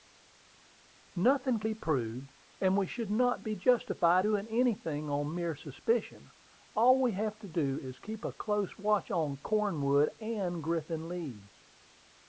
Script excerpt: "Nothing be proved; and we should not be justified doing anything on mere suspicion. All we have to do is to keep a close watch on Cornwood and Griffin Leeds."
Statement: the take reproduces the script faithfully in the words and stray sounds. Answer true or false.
true